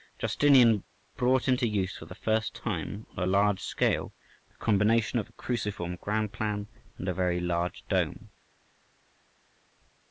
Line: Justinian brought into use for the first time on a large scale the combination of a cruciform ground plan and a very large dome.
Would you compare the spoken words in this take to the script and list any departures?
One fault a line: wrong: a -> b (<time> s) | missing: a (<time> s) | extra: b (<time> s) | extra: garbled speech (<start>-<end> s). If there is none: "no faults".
no faults